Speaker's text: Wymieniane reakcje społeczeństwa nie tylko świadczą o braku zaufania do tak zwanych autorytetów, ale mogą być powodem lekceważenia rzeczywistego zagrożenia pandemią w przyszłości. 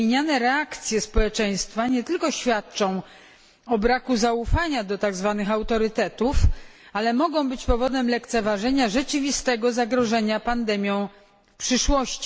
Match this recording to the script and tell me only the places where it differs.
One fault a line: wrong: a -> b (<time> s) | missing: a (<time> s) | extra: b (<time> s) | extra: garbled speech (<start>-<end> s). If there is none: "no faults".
no faults